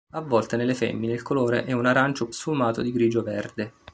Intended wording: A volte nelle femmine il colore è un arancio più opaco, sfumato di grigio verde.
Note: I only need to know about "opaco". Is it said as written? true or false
false